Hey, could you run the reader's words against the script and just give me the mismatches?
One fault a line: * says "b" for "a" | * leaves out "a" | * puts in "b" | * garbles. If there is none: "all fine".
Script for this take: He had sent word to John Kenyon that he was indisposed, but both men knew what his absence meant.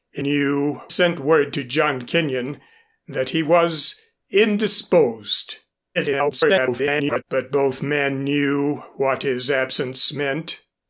* says "knew" for "had"
* garbles